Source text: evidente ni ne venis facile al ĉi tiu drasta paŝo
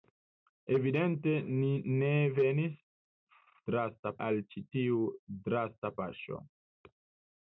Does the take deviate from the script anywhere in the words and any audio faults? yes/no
yes